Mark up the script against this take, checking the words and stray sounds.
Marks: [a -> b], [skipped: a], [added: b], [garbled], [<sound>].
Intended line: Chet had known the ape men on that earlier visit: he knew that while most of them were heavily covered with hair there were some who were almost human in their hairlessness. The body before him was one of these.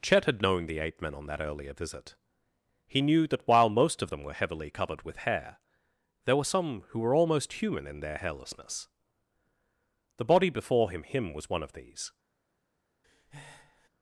Chet had known the ape men on that earlier visit: he knew that while most of them were heavily covered with hair there were some who were almost human in their hairlessness. The body before him [added: him] was one of these. [breath]